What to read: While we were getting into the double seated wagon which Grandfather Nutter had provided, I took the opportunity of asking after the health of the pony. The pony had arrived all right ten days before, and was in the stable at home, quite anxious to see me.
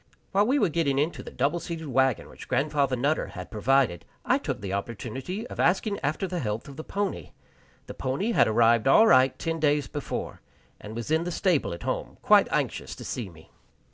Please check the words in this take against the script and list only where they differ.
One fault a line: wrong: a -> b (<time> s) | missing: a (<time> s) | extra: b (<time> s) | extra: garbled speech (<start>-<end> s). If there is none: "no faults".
no faults